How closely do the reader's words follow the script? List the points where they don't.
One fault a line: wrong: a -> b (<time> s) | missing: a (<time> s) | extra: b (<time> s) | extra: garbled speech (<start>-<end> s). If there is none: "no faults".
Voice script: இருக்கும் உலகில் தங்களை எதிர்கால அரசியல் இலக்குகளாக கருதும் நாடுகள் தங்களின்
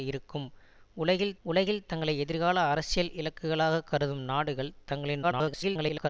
extra: உலகில் (1.4 s)
extra: garbled speech (5.2-6.1 s)